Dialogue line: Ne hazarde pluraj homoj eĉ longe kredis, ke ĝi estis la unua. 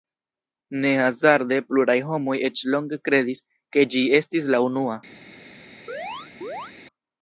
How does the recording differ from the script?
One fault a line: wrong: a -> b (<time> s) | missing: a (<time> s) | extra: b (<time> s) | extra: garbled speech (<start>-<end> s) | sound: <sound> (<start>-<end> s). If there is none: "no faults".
sound: chirp (5.9-6.7 s)